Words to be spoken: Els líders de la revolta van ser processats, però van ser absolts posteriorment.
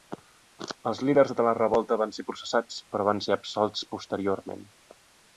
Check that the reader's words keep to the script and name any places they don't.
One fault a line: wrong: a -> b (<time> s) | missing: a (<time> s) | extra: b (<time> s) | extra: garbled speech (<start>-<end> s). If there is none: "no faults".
no faults